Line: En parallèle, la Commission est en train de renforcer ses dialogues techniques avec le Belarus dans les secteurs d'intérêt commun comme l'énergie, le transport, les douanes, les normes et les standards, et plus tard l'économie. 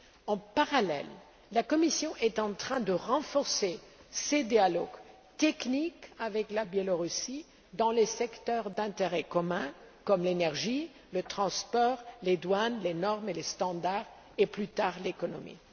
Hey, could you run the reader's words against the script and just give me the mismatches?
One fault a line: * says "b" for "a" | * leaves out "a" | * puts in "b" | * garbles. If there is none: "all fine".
all fine